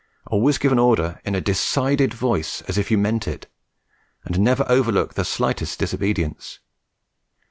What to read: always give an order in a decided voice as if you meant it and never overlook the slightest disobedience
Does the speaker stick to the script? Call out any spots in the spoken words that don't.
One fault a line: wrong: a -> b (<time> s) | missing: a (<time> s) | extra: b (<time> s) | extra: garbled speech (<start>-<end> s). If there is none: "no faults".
no faults